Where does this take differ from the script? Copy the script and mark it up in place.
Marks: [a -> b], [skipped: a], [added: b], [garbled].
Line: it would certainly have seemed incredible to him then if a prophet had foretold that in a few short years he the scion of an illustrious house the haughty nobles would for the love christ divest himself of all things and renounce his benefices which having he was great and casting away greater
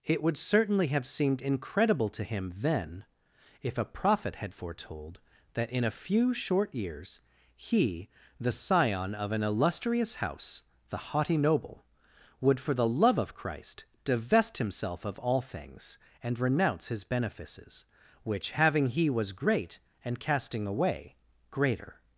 it would certainly have seemed incredible to him then if a prophet had foretold that in a few short years he the scion of an illustrious house the haughty [nobles -> noble] would for the love [added: of] christ divest himself of all things and renounce his benefices which having he was great and casting away greater